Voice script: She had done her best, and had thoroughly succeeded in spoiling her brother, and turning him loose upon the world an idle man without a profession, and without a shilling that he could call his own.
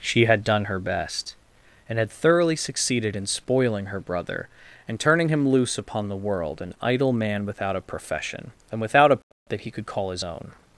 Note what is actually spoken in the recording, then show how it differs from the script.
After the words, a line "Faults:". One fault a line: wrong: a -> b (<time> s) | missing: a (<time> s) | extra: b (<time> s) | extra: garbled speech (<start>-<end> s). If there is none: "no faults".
She had done her best, and had thoroughly succeeded in spoiling her brother, and turning him loose upon the world an idle man without a profession, and without a that he could call his own.
Faults:
missing: shilling (9.2 s)